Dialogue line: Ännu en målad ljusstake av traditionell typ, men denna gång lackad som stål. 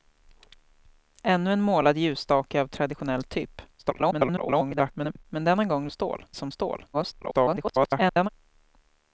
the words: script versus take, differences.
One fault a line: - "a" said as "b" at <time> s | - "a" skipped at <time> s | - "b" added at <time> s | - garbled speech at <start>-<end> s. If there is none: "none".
- garbled speech at 3.8-5.3 s
- "lackad" said as "stål" at 5.9 s
- garbled speech at 6.9-8.3 s